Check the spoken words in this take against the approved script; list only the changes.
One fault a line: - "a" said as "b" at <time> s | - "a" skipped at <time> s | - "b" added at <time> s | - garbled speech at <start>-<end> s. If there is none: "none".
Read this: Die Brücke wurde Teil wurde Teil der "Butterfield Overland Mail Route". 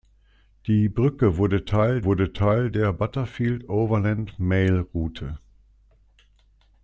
none